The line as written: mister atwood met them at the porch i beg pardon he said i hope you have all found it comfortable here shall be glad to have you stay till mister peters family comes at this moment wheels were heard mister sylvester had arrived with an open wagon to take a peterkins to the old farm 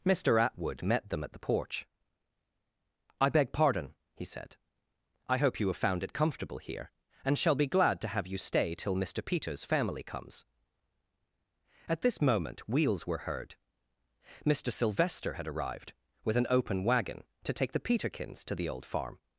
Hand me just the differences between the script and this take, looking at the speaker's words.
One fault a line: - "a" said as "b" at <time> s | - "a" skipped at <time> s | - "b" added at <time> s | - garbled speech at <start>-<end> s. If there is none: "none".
- "all" skipped at 5.8 s
- "and" added at 7.2 s
- "a" said as "the" at 17.7 s